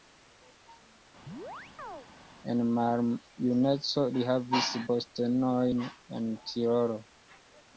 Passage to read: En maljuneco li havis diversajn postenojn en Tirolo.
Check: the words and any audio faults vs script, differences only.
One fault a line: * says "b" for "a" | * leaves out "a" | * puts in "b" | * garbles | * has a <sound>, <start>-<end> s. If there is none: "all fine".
* has a chirp, 1.3-2.1 s
* leaves out "diversajn"